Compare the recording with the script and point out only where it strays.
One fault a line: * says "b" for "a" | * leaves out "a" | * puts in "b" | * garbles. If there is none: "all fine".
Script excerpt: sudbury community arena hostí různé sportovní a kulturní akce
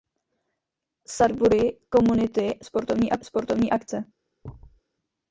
* leaves out "arena hostí různé"
* says "sportovní" for "kulturní"